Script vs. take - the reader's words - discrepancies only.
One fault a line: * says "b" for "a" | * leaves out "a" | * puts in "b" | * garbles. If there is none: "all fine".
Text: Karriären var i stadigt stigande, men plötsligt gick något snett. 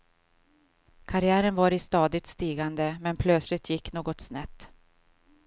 all fine